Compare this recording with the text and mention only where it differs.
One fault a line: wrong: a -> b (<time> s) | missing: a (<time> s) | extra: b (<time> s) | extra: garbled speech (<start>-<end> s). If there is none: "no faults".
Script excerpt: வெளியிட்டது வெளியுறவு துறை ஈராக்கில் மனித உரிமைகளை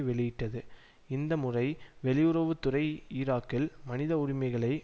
extra: இந்த முறை (1.1 s)